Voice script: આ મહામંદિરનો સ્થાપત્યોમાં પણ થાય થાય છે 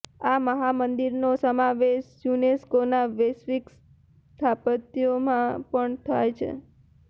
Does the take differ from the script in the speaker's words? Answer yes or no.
yes